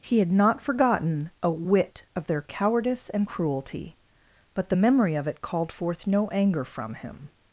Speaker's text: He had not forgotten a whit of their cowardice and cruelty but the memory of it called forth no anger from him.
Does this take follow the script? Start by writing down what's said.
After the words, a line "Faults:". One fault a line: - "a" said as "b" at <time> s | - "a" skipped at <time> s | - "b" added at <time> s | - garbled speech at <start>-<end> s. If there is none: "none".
He had not forgotten a whit of their cowardice and cruelty but the memory of it called forth no anger from him.
Faults:
none